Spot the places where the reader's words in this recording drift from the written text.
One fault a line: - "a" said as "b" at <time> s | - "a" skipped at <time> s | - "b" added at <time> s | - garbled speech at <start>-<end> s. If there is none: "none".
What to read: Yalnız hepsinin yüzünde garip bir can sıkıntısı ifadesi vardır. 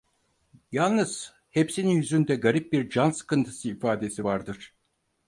none